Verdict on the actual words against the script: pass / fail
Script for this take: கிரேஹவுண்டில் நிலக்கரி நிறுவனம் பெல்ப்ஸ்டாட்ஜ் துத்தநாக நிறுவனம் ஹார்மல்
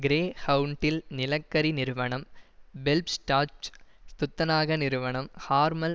pass